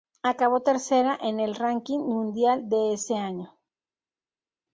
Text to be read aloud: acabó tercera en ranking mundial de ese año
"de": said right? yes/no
yes